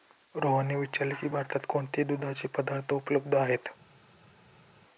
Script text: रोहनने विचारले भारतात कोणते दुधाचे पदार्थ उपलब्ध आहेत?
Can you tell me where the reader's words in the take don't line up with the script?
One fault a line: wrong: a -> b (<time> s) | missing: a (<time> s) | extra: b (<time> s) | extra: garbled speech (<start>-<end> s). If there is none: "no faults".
extra: की (1.1 s)